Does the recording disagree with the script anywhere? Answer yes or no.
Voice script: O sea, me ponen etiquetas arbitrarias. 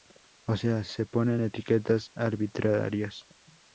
yes